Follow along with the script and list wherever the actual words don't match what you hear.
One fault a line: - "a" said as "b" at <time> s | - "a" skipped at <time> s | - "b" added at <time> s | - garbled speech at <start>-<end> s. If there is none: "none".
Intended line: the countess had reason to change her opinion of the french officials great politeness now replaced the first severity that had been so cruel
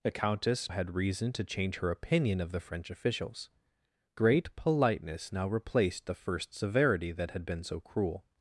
none